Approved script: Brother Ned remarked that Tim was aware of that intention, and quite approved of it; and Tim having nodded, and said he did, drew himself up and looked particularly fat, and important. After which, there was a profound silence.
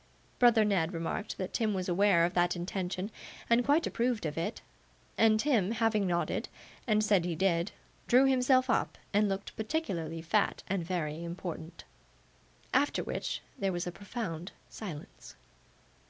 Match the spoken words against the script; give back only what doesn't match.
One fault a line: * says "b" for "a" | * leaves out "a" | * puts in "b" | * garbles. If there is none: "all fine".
* puts in "very"